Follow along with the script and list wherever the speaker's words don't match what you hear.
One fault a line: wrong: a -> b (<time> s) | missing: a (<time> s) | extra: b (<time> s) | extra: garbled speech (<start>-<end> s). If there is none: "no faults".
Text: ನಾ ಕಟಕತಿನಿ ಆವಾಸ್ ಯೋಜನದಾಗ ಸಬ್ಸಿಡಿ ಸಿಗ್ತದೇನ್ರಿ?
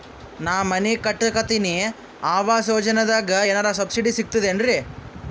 extra: ಮನಿ (0.6 s)
extra: ಏನರ (3.5 s)